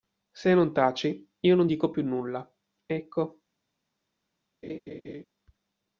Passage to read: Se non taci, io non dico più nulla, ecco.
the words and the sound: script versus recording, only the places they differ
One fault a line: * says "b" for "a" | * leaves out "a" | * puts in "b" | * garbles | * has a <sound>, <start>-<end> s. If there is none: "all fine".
* has a laugh, 4.6-5.2 s